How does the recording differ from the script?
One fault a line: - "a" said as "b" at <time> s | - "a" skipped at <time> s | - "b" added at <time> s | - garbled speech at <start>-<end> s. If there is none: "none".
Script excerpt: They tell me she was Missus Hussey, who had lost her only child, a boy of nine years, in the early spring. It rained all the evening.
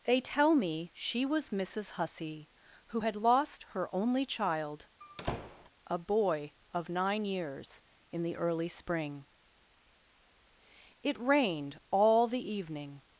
none